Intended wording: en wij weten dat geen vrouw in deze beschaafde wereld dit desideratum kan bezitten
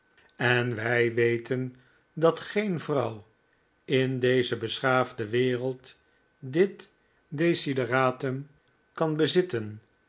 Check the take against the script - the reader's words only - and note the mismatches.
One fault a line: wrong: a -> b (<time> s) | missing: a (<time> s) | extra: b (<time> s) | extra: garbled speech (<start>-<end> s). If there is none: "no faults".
no faults